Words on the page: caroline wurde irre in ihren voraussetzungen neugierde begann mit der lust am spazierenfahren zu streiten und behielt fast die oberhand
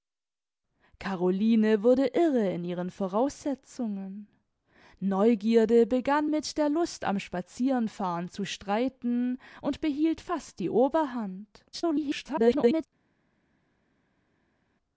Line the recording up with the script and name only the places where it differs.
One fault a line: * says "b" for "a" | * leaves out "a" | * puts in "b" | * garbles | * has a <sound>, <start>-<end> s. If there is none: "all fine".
* garbles